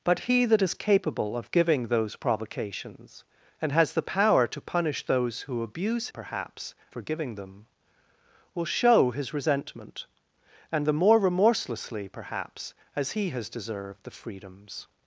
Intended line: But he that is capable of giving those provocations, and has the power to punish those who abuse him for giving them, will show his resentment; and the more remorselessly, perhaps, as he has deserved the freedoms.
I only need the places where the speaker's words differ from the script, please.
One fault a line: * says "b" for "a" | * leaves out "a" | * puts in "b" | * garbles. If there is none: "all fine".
* says "perhaps" for "him"